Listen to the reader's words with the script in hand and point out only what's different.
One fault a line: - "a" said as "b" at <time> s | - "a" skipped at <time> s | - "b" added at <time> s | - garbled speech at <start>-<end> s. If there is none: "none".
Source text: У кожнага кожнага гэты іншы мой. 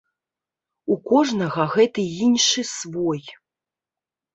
- "кожнага" skipped at 1.7 s
- "мой" said as "свой" at 2.8 s